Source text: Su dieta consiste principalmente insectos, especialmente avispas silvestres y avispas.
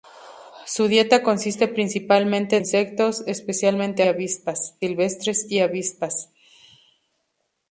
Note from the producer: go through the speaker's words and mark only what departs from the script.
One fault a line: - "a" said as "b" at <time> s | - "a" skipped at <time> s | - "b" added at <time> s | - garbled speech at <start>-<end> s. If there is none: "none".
none